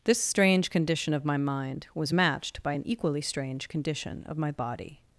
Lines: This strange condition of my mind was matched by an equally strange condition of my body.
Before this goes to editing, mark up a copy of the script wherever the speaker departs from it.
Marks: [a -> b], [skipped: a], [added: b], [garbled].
This strange condition of my mind was matched by an equally strange condition of my body.